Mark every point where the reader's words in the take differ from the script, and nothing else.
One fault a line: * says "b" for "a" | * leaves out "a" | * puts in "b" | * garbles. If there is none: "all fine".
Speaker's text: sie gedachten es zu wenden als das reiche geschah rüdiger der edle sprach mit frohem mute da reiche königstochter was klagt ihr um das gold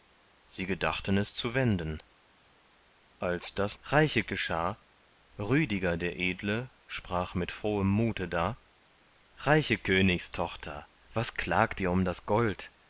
all fine